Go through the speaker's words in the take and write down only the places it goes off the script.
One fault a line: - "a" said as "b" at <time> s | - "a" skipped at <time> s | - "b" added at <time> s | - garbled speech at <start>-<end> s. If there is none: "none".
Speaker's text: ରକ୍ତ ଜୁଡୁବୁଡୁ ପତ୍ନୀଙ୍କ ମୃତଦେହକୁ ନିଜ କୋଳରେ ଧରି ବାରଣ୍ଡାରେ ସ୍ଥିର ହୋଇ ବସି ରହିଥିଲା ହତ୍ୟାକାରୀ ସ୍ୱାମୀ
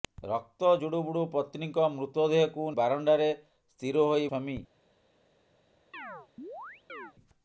- "ନିଜ କୋଳରେ ଧରି" skipped at 2.7 s
- "ବସି ରହିଥିଲା ହତ୍ୟାକାରୀ" skipped at 4.3 s